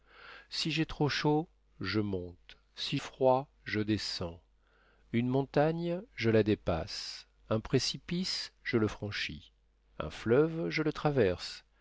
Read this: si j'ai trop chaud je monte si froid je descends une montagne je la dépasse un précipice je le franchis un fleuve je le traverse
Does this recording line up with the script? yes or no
yes